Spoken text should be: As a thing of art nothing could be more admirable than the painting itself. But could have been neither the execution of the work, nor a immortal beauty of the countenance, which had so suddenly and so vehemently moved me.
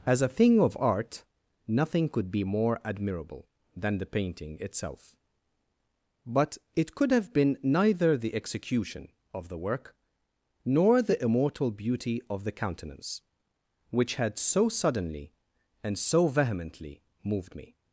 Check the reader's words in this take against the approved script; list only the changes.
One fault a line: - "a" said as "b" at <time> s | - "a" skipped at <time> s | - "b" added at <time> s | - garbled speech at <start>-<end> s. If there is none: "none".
- "it" added at 6.7 s
- "a" said as "the" at 11.0 s